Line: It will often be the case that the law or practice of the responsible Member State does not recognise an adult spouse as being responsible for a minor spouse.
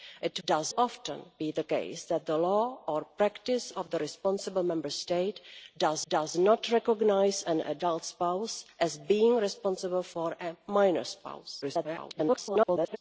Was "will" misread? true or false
true